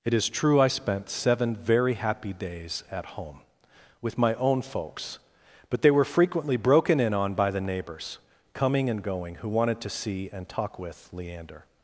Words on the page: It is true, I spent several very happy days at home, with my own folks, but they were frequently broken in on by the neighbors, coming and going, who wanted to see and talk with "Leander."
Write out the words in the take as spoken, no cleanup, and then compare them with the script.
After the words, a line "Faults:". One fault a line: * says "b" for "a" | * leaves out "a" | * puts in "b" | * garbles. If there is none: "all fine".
It is true, I spent seven very happy days at home, with my own folks, but they were frequently broken in on by the neighbors, coming and going, who wanted to see and talk with "Leander."
Faults:
* says "seven" for "several"